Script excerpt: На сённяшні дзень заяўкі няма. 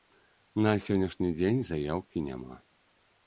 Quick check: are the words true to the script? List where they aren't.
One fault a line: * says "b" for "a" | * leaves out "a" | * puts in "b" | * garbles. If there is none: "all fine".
all fine